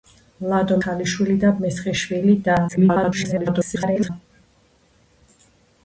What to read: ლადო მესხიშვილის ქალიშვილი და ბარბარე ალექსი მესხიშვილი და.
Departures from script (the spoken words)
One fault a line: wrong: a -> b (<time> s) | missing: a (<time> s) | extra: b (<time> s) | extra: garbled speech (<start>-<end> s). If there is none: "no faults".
missing: მესხიშვილის (0.8 s)
missing: ბარბარე ალექსი (1.5 s)
extra: garbled speech (2.7-4.1 s)